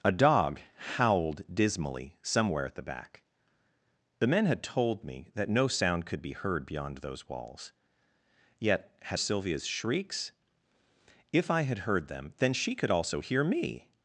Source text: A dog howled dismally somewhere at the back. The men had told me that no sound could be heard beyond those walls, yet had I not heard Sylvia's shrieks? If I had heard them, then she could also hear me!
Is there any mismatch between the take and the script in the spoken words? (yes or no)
yes